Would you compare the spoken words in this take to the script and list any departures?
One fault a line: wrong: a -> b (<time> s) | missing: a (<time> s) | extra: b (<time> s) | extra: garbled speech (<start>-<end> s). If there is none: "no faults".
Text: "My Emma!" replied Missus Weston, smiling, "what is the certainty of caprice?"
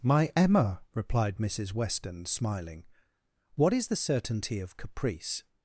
no faults